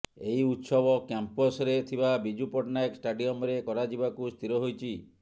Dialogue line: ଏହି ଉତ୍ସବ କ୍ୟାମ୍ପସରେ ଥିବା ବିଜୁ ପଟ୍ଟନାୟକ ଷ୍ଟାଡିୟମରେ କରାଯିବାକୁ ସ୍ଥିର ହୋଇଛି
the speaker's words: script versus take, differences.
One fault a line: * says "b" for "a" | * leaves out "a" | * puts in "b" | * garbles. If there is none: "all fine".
all fine